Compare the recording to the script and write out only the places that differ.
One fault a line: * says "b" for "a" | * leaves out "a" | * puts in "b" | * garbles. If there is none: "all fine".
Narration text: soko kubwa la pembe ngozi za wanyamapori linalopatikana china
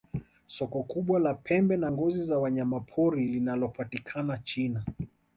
* puts in "na"